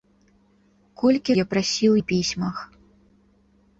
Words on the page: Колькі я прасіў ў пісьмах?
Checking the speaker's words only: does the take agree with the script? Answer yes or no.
yes